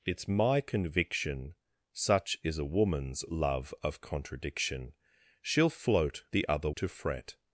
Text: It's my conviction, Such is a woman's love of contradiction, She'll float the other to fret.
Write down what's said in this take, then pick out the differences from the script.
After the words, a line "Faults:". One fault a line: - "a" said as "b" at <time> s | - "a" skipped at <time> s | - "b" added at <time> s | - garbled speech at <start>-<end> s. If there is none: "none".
It's my conviction, Such is a woman's love of contradiction, She'll float the other to fret.
Faults:
none